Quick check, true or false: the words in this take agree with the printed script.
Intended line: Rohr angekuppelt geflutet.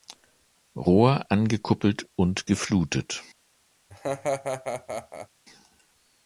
false